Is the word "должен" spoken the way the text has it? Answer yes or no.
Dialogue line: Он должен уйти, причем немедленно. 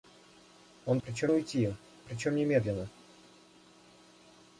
no